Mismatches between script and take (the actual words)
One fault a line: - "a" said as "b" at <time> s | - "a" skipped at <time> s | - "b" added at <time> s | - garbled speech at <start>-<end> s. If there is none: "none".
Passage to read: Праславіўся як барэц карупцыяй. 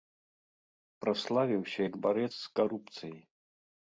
- "з" added at 2.3 s